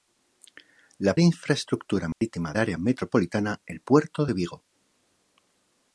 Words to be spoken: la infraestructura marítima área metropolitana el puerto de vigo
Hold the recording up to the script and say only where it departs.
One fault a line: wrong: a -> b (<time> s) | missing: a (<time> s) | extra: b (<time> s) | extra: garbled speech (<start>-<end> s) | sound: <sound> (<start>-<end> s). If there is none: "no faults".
sound: dropout (2.1-2.2 s)